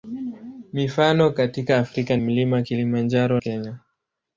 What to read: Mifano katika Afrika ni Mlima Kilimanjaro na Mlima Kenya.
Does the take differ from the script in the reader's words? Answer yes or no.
yes